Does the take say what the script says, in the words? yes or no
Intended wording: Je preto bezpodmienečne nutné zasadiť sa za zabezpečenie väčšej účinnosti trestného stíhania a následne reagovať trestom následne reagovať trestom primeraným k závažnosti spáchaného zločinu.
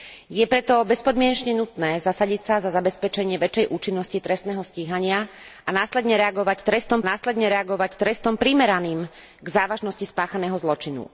yes